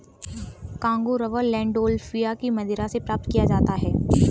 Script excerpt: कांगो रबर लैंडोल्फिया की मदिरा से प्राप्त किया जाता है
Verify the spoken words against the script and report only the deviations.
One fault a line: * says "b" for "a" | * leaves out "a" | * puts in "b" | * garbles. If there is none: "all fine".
all fine